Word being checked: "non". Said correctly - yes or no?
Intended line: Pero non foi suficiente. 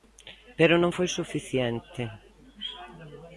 yes